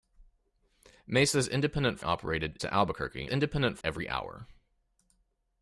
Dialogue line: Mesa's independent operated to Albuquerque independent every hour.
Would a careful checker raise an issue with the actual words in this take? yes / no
no